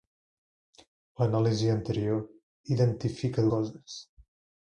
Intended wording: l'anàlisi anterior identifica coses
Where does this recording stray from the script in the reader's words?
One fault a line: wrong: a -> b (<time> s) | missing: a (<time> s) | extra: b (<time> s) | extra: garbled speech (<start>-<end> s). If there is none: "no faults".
no faults